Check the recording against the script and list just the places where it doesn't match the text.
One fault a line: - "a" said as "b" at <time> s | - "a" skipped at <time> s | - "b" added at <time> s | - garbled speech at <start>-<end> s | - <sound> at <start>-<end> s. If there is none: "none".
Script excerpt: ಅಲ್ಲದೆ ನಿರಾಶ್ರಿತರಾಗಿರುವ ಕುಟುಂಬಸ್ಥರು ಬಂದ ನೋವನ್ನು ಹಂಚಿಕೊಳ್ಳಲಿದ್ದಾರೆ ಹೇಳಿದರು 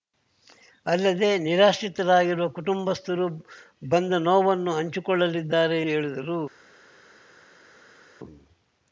none